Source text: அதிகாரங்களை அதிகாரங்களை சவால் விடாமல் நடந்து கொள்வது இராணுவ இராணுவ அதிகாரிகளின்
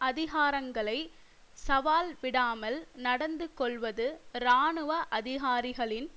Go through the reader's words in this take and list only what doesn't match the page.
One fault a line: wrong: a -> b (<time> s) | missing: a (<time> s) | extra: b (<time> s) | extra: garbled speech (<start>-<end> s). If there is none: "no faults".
missing: அதிகாரங்களை (1.0 s)
missing: இராணுவ (4.9 s)